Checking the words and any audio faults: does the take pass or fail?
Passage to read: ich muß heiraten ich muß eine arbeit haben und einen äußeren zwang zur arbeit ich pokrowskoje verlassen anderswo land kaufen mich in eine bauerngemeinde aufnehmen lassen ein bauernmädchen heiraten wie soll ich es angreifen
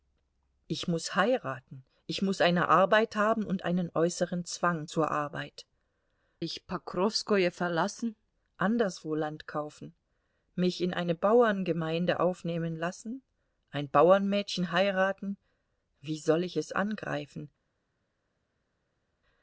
pass